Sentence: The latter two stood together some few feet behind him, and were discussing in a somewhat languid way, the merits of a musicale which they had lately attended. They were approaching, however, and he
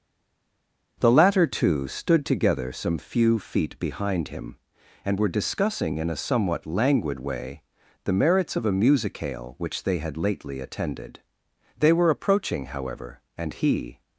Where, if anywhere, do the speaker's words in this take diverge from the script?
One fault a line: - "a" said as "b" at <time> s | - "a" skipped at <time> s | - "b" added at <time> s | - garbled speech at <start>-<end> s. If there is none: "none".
none